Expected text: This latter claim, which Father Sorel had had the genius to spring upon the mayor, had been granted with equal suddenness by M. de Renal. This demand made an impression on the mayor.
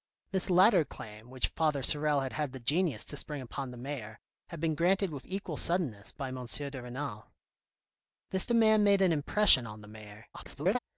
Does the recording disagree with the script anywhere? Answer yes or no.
yes